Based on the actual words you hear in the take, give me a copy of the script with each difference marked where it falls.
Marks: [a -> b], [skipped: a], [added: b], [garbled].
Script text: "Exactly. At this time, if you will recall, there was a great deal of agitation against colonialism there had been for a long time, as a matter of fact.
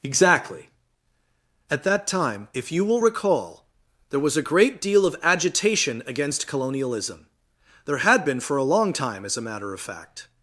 "Exactly. At [this -> that] time, if you will recall, there was a great deal of agitation against colonialism there had been for a long time, as a matter of fact.